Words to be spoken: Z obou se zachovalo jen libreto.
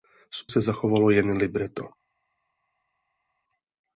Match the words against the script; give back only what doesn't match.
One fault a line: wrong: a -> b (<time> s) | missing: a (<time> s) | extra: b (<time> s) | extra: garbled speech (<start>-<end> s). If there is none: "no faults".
missing: obou (0.4 s)